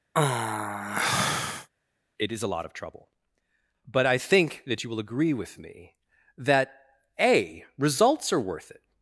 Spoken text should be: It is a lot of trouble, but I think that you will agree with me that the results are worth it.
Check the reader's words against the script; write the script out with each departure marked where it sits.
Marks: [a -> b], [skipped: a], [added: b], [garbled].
It is a lot of trouble, but I think that you will agree with me that [the -> a] results are worth it.